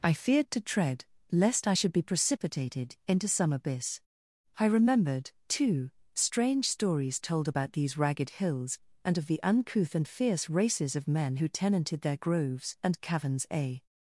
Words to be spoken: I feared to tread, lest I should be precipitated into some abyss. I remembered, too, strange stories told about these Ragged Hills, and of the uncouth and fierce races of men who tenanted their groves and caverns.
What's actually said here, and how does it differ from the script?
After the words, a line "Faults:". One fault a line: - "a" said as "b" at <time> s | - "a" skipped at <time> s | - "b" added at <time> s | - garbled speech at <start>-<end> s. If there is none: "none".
I feared to tread, lest I should be precipitated into some abyss. I remembered, too, strange stories told about these Ragged Hills, and of the uncouth and fierce races of men who tenanted their groves and caverns. A
Faults:
- "A" added at 13.5 s